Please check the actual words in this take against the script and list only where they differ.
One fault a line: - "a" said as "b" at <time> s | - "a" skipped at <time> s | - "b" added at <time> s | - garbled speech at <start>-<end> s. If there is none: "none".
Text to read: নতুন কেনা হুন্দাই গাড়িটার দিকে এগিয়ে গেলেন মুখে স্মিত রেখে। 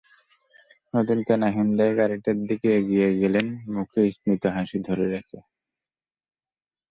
- "হাসি ধরে" added at 4.5 s